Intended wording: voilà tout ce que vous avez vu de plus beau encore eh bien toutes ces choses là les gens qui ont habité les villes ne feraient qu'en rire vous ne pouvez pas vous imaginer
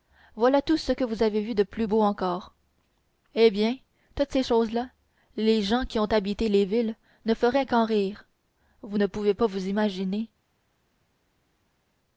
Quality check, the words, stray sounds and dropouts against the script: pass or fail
pass